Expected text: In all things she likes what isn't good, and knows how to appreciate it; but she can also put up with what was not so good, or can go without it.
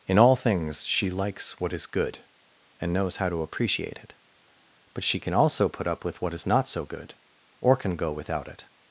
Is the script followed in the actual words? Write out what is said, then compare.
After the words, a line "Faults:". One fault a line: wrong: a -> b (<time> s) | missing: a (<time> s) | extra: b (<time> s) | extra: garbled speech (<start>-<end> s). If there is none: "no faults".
In all things she likes what is good, and knows how to appreciate it; but she can also put up with what is not so good, or can go without it.
Faults:
wrong: isn't -> is (1.7 s)
wrong: was -> is (6.3 s)